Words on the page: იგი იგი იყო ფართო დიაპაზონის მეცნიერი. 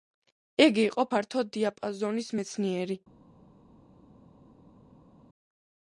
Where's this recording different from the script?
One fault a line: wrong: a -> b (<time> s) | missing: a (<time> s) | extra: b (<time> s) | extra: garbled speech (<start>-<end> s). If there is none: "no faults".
missing: იგი (0.8 s)